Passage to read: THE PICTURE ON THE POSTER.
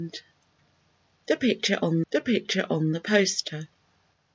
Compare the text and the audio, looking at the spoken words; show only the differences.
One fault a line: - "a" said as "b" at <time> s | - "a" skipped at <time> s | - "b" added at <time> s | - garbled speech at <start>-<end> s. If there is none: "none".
- "PICTURE ON THE" added at 2.2 s